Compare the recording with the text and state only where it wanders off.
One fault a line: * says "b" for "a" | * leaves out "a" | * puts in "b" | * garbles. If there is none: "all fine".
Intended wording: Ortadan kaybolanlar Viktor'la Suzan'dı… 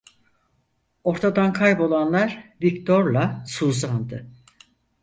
all fine